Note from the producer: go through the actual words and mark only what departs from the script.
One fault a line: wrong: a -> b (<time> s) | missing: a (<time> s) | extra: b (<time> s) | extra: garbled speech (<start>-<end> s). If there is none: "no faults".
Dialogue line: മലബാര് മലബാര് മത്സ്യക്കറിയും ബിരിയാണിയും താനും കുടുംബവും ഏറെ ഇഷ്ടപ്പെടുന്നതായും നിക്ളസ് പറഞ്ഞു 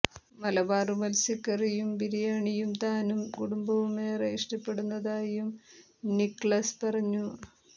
missing: മലബാര് (0.9 s)